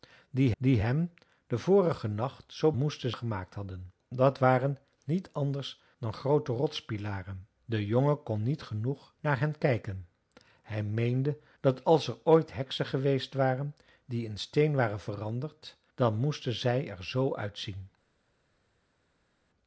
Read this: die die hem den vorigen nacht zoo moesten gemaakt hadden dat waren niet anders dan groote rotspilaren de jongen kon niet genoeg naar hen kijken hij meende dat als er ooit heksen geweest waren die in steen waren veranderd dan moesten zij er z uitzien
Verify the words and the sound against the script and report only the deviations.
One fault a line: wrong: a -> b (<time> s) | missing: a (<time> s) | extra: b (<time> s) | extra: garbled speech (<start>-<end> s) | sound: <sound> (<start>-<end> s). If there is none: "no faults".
no faults